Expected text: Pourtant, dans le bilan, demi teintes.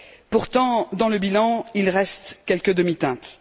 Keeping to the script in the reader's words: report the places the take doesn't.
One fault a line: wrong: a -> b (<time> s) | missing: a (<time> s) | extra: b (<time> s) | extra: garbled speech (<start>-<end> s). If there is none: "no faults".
extra: il reste quelques (1.8 s)